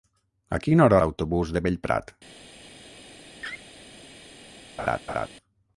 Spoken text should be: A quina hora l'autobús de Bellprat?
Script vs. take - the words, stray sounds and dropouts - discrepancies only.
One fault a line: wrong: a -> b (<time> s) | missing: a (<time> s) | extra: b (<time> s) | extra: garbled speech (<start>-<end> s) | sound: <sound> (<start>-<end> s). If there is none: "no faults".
sound: laugh (3.4-3.6 s)
sound: laugh (4.8-5.3 s)